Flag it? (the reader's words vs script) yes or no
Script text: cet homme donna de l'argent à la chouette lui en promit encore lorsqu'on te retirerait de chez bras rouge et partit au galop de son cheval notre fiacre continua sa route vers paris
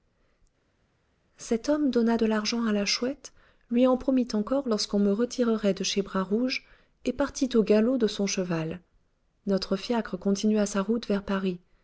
yes